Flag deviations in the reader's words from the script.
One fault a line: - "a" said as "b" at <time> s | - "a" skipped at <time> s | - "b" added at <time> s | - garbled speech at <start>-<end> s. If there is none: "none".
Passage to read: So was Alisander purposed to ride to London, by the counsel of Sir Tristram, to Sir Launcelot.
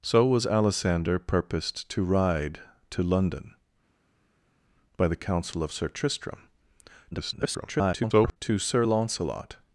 - garbled speech at 7.1-8.4 s